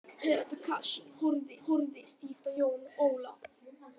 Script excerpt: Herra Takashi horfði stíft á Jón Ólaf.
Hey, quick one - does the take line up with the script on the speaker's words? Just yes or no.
no